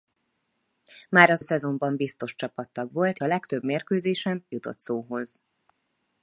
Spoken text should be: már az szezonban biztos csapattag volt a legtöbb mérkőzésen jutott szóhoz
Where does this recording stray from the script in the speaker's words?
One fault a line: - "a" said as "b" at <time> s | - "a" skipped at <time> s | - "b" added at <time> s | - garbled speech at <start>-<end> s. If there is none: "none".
none